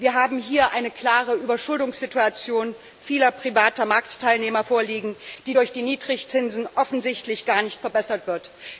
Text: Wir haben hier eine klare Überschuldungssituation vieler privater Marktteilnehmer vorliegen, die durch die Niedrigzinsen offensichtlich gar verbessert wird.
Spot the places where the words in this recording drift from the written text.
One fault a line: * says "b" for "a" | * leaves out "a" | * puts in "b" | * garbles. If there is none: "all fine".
* puts in "nicht"